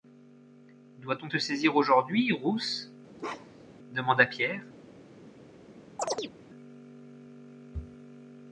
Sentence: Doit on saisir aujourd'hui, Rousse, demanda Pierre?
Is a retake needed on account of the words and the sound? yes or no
yes